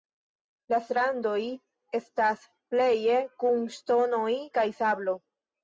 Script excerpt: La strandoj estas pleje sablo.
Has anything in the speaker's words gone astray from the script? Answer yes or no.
yes